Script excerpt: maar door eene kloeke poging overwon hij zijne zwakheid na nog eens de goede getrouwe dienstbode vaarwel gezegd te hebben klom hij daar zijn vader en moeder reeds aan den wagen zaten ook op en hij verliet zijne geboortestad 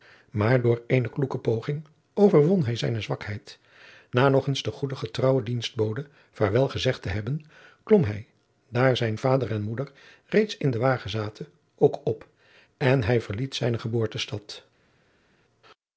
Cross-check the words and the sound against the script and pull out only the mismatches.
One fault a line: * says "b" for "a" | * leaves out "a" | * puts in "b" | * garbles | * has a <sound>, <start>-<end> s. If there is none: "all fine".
* says "in" for "aan"